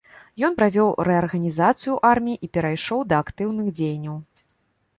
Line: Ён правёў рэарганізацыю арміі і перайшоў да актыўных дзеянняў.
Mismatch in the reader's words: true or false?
false